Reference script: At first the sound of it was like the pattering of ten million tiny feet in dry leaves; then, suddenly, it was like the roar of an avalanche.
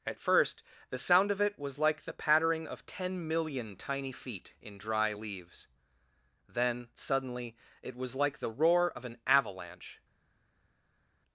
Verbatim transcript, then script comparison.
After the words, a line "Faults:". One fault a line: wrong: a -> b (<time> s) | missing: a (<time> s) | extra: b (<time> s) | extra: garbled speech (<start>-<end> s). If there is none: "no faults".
At first the sound of it was like the pattering of ten million tiny feet in dry leaves; then, suddenly, it was like the roar of an avalanche.
Faults:
no faults